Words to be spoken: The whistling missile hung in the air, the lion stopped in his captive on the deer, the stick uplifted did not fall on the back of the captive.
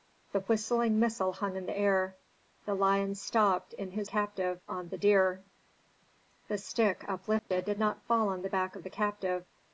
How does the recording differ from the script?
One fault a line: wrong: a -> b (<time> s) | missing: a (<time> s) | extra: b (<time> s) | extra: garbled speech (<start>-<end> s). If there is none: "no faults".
no faults